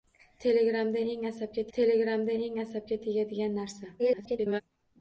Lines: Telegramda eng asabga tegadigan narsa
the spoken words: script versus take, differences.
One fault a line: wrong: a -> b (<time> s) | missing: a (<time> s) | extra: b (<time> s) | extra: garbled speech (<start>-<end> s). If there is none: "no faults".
extra: telegramda eng asabga (1.8 s)
extra: garbled speech (4.0-4.6 s)